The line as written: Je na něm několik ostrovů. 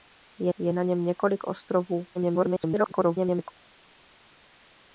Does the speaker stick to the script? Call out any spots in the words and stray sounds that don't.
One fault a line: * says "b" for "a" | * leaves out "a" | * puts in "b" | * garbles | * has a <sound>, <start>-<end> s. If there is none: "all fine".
* puts in "je"
* garbles